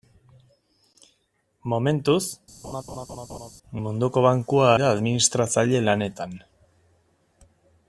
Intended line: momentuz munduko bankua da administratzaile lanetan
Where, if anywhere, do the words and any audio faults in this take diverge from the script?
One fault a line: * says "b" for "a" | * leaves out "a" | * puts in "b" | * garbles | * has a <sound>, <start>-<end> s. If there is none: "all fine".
* has a laugh, 2.6-3.5 s